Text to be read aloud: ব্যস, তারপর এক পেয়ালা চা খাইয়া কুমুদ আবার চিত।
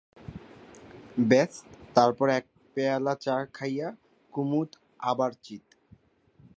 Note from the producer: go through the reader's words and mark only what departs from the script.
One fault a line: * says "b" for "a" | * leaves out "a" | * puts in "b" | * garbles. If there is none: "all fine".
all fine